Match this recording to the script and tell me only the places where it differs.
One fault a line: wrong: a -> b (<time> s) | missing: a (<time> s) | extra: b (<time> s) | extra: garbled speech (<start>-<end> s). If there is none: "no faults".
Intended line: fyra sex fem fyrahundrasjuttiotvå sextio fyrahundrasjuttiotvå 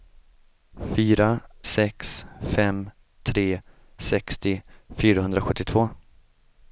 wrong: fyrahundrasjuttiotvå -> tre (3.3 s)